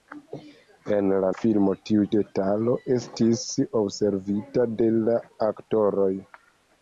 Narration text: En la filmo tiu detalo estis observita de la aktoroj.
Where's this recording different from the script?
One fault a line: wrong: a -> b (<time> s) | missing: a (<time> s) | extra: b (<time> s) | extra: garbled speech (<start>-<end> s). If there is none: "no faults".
no faults